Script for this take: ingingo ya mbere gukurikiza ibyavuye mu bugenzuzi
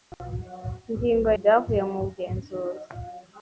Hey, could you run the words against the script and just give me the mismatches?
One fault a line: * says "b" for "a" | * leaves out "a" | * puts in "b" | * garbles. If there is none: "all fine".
* leaves out "ya mbere gukurikiza"